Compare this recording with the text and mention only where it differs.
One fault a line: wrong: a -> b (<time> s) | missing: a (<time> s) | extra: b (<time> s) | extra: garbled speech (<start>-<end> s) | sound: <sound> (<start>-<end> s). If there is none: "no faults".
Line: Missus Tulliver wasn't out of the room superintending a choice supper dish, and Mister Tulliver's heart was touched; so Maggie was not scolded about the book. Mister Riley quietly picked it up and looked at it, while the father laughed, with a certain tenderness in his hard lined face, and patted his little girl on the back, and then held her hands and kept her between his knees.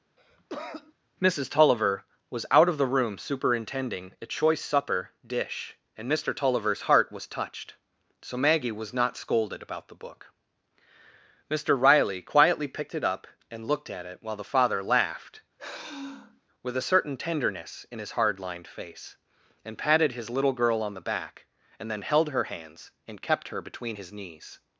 sound: cough (0.2-0.9 s)
wrong: wasn't -> was (2.3 s)
sound: sigh (15.6-16.4 s)